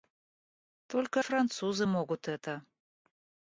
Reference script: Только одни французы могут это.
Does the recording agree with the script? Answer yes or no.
no